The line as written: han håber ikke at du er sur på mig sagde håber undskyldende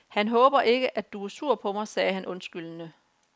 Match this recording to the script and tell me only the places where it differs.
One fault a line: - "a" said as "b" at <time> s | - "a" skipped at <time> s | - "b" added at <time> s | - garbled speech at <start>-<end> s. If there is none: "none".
- "håber" said as "han" at 2.1 s